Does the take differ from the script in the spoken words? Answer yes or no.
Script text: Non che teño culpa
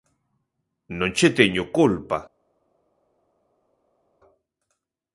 no